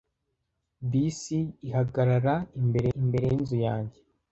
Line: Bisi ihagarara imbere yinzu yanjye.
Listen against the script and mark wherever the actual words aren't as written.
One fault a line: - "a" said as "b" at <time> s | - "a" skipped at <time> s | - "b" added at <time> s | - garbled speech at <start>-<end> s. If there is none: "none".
- "imbere" added at 3.0 s